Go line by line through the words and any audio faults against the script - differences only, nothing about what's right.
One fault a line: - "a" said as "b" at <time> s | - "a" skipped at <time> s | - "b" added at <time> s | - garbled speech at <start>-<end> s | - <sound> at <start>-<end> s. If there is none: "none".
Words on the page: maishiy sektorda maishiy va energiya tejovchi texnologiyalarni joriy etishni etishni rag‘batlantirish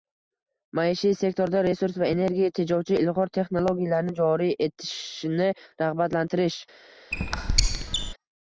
- "maishiy" said as "resurs" at 1.7 s
- "ilg‘or" added at 3.0 s
- "etishni" skipped at 5.5 s
- squeak at 7.1-8.1 s